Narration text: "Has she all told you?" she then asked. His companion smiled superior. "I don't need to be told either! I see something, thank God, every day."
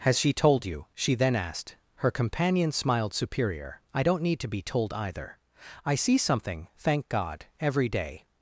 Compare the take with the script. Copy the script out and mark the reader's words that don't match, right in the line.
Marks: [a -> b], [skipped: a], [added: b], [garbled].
"Has she [skipped: all] told you?" she then asked. [His -> Her] companion smiled superior. "I don't need to be told either! I see something, thank God, every day."